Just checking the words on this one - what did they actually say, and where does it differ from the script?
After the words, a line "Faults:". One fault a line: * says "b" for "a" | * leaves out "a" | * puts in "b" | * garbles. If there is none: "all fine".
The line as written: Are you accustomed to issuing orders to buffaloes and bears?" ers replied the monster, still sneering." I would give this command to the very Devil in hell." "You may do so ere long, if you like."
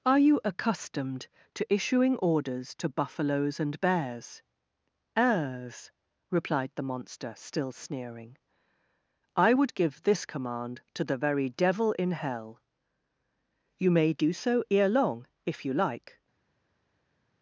Are you accustomed to issuing orders to buffaloes and bears?" ers replied the monster, still sneering." I would give this command to the very Devil in hell." "You may do so ere long, if you like."
Faults:
all fine